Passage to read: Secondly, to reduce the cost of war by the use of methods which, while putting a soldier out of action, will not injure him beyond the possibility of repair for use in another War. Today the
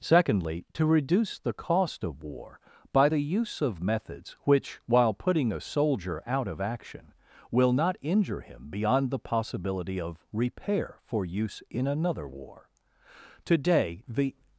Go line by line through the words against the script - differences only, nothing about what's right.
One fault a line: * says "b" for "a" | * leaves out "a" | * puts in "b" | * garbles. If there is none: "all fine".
all fine